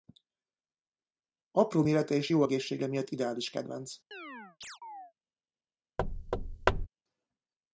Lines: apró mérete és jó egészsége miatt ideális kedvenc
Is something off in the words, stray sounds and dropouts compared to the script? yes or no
yes